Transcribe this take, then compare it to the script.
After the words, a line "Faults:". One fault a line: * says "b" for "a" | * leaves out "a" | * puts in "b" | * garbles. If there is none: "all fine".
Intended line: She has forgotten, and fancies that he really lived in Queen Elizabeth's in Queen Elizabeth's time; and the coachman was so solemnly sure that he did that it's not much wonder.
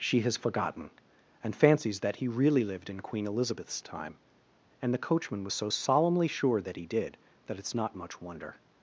She has forgotten, and fancies that he really lived in Queen Elizabeth's time; and the coachman was so solemnly sure that he did that it's not much wonder.
Faults:
* leaves out "in Queen Elizabeth's"